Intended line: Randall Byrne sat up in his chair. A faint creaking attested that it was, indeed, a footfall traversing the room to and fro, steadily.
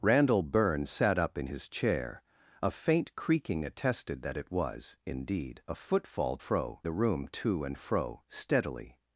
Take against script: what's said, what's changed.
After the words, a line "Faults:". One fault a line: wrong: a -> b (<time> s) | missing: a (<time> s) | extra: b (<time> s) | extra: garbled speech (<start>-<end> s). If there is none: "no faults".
Randall Byrne sat up in his chair. A faint creaking attested that it was, indeed, a footfall fro the room to and fro, steadily.
Faults:
wrong: traversing -> fro (6.4 s)